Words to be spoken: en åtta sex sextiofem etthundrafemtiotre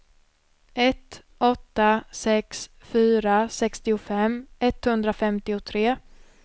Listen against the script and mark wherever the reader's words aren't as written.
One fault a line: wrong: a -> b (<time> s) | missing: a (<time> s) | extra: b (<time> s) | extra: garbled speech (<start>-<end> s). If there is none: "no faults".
wrong: en -> ett (0.7 s)
extra: fyra (2.8 s)